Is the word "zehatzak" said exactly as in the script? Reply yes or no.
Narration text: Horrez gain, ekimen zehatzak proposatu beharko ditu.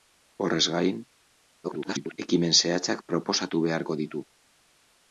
yes